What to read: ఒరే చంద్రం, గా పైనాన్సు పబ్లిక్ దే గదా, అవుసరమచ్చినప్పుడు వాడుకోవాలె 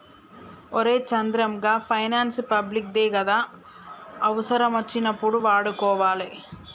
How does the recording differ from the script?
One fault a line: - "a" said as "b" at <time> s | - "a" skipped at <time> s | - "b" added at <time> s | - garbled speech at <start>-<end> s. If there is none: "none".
none